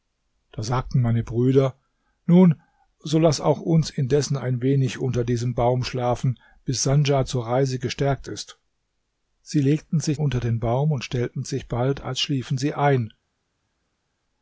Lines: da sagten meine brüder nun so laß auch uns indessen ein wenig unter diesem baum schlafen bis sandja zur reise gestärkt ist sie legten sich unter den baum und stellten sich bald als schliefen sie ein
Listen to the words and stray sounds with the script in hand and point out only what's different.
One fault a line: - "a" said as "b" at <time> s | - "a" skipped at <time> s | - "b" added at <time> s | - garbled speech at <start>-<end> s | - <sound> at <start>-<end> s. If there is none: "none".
none